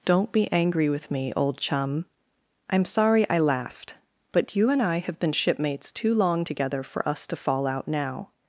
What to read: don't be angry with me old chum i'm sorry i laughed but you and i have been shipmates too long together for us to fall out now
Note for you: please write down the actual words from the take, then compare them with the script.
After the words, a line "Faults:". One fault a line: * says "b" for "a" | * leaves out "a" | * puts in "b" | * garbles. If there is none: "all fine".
don't be angry with me old chum i'm sorry i laughed but you and i have been shipmates too long together for us to fall out now
Faults:
all fine